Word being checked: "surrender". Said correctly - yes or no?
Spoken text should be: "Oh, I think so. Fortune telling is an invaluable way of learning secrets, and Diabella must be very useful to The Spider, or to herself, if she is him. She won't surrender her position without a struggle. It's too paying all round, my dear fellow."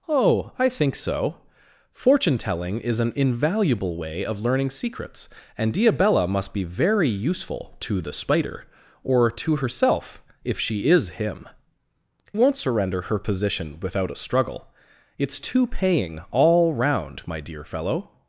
yes